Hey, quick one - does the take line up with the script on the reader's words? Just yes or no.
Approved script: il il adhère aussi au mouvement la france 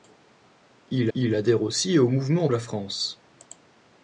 yes